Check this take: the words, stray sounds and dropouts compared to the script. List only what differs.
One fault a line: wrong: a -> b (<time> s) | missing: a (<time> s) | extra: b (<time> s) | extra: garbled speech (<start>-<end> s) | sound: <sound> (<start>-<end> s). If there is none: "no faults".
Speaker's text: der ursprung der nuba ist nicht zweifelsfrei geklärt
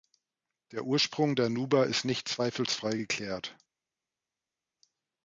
no faults